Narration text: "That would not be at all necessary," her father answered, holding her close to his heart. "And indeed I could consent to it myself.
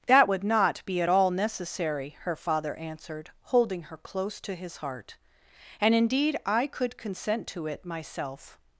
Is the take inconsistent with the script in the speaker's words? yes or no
no